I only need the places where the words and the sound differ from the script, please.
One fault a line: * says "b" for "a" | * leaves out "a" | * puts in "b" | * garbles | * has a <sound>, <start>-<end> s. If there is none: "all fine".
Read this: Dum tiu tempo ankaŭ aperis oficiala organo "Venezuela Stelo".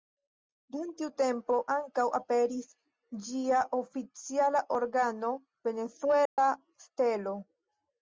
* puts in "ĝia"
* has a dropout, 6.3-6.4 s